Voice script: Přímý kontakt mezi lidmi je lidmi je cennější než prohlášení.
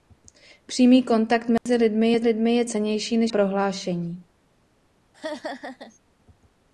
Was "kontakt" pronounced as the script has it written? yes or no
yes